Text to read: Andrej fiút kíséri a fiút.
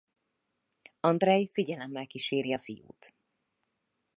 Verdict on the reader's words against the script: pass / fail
fail